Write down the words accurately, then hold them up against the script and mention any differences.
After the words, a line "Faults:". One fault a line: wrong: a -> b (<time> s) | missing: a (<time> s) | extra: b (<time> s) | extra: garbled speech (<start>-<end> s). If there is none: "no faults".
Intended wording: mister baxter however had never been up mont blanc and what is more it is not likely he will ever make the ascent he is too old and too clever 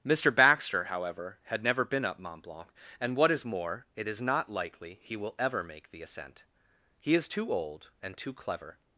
mister baxter however had never been up mont blanc and what is more it is not likely he will ever make the ascent he is too old and too clever
Faults:
no faults